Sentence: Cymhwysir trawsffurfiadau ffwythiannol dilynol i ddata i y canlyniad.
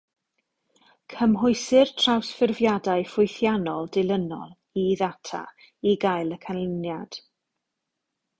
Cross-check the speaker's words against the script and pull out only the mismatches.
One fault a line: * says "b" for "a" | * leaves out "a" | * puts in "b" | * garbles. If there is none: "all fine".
* puts in "gael"